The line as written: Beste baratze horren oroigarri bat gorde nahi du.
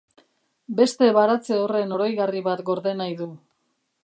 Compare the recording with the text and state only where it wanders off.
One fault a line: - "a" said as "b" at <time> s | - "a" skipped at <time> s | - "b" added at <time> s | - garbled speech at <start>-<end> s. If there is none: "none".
none